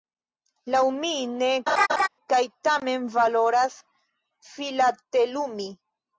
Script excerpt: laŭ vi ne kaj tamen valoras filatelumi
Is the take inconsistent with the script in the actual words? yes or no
yes